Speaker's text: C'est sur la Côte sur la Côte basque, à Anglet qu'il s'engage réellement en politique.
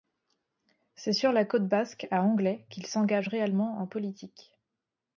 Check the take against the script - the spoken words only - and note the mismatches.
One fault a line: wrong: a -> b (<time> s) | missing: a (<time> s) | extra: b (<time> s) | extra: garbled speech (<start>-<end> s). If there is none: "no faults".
missing: sur la Côte (1.7 s)